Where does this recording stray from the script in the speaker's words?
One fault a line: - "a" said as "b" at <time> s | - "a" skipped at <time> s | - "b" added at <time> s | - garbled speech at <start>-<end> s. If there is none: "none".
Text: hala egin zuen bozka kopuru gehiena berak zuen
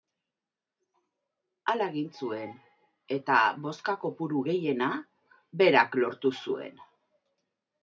- "eta" added at 3.2 s
- "lortu" added at 6.0 s